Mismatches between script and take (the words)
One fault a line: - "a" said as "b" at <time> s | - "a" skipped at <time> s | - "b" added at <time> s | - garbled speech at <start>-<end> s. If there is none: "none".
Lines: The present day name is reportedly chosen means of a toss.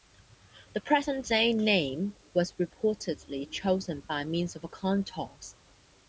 - "is" said as "was" at 2.3 s
- "by" added at 4.0 s
- "coin" added at 4.7 s